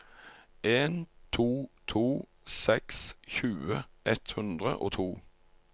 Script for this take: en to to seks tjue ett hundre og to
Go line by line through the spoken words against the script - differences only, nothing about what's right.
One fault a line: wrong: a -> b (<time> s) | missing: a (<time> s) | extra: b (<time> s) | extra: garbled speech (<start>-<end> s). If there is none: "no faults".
no faults